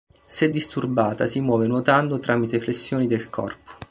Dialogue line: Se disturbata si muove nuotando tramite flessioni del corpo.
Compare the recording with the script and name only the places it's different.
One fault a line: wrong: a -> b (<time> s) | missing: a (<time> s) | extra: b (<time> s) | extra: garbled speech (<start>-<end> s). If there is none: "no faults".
no faults